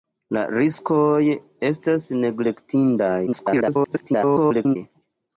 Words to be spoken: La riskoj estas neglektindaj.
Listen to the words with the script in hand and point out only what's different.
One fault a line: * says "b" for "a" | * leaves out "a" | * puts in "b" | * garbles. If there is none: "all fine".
* garbles